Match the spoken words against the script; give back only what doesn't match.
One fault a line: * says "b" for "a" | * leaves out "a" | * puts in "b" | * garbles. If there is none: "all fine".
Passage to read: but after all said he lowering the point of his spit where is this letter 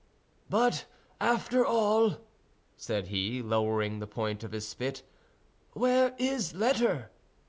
* leaves out "this"